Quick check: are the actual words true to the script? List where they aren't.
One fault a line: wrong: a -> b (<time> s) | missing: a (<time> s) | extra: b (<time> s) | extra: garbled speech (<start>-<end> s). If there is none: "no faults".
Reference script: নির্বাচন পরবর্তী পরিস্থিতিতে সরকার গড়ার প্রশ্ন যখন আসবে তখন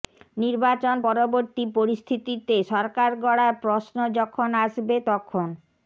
no faults